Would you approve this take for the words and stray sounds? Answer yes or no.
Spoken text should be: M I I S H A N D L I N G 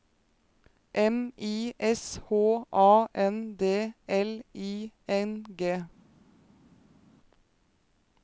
no